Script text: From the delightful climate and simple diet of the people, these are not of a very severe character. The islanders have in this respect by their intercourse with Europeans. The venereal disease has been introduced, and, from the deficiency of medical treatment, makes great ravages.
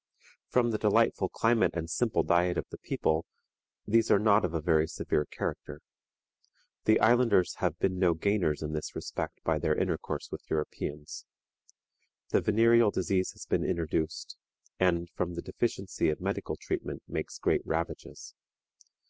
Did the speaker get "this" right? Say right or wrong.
right